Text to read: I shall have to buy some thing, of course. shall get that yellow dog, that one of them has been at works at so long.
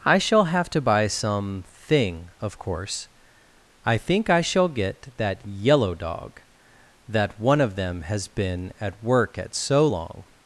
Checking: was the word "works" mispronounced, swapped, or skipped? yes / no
yes